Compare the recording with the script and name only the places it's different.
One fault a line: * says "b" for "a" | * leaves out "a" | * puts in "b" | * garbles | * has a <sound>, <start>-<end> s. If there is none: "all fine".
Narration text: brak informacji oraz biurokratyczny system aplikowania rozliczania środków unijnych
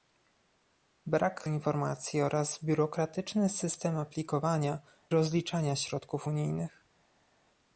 all fine